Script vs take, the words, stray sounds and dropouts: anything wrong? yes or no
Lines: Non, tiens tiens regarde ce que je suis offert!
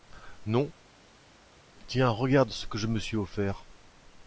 yes